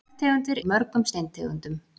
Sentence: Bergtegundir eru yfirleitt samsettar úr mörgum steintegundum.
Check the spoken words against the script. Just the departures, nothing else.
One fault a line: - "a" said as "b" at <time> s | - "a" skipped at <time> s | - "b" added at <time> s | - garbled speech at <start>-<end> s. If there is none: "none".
- "eru yfirleitt samsettar" skipped at 0.6 s